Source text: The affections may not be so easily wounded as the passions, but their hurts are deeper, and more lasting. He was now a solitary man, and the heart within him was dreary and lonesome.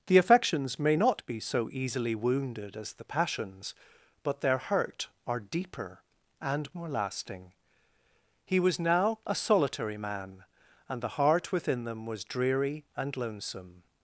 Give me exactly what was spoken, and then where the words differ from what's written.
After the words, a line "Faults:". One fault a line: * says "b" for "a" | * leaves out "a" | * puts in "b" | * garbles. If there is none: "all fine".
The affections may not be so easily wounded as the passions, but their hurt are deeper, and more lasting. He was now a solitary man, and the heart within them was dreary and lonesome.
Faults:
* says "hurt" for "hurts"
* says "them" for "him"